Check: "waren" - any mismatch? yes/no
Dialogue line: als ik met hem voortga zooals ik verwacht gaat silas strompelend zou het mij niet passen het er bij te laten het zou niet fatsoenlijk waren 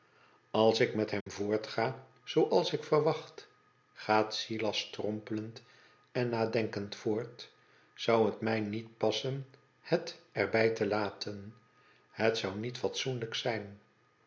yes